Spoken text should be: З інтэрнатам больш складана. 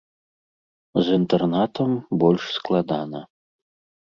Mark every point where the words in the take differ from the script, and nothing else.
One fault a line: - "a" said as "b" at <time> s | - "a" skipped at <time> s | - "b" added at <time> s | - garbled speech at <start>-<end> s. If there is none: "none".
none